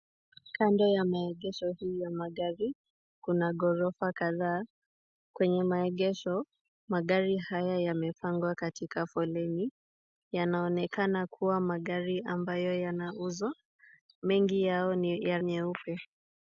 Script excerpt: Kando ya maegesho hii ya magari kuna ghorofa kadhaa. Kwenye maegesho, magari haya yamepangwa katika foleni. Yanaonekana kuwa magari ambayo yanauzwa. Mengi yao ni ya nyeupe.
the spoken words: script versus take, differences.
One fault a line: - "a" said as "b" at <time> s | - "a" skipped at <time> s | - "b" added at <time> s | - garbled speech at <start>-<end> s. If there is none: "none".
none